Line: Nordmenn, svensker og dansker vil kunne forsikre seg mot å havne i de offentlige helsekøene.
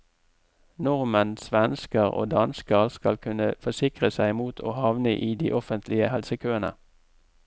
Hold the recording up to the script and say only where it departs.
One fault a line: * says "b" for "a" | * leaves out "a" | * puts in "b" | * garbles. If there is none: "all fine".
* says "skal" for "vil"